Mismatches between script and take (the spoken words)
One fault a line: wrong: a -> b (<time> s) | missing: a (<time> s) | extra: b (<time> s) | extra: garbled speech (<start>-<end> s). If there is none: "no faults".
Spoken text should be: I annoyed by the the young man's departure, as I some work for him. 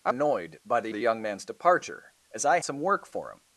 no faults